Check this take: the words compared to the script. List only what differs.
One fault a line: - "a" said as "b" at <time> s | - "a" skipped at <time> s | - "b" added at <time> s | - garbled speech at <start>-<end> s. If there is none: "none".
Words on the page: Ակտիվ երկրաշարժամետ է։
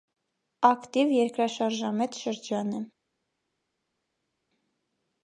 - "շրջան" added at 2.2 s